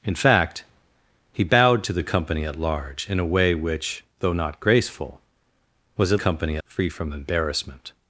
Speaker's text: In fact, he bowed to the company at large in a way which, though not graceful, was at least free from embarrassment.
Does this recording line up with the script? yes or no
no